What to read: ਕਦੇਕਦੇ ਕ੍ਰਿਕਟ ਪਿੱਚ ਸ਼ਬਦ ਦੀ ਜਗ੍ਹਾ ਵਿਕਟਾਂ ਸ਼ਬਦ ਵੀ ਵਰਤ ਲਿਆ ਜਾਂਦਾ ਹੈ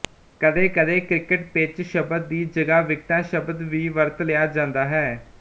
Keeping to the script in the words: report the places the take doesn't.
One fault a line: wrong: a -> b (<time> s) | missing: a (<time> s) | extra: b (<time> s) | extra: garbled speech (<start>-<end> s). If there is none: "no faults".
no faults